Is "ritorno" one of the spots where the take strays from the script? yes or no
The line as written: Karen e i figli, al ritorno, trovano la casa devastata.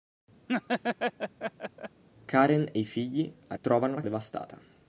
yes